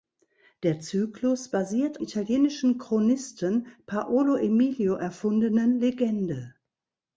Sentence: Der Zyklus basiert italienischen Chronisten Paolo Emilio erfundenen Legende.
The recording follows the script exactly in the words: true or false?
true